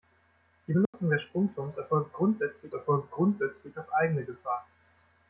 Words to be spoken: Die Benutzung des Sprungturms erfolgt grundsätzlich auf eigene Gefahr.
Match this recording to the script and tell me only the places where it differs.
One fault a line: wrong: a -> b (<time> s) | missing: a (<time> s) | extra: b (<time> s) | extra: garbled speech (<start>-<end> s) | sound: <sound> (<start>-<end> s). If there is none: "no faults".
sound: dropout (0.9-0.9 s)
extra: erfolgt grundsätzlich (2.7 s)